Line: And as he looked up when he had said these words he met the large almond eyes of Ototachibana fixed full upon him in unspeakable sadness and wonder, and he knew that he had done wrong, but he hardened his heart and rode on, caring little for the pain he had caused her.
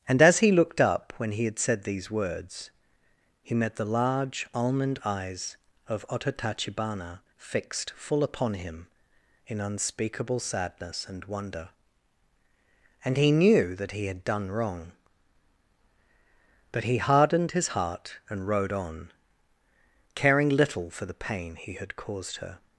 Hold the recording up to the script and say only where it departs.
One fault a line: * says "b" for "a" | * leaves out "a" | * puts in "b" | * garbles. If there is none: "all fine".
all fine